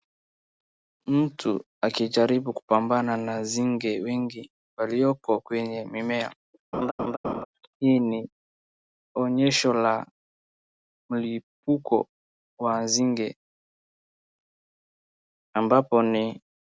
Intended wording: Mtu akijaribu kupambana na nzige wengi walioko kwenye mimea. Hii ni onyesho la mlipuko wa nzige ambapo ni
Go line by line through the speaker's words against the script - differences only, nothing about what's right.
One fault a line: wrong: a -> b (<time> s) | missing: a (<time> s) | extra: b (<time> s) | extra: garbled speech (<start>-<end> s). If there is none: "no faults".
no faults